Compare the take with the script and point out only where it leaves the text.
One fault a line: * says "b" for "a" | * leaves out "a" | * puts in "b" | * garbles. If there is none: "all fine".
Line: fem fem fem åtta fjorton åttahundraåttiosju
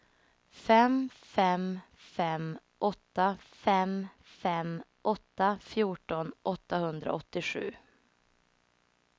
* puts in "fem fem åtta"